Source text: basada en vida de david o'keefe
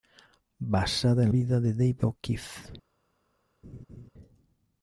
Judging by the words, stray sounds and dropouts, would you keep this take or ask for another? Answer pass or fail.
fail